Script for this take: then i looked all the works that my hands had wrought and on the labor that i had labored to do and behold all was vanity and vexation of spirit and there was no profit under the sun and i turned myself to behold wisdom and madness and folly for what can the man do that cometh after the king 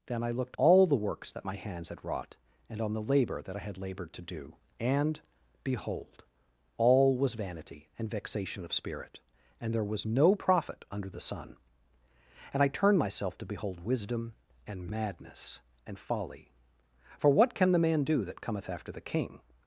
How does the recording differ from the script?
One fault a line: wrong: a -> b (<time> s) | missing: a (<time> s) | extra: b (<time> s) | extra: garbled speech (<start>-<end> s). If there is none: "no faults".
no faults